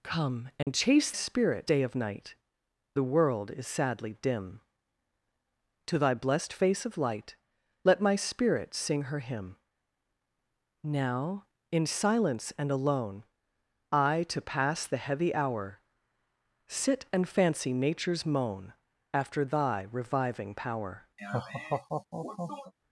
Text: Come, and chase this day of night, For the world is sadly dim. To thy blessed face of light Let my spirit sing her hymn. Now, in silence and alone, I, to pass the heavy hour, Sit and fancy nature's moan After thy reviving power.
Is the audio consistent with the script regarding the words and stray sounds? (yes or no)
no